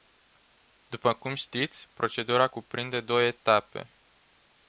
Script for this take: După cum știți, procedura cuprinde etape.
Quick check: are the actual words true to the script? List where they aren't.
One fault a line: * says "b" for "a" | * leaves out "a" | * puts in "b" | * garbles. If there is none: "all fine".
* puts in "două"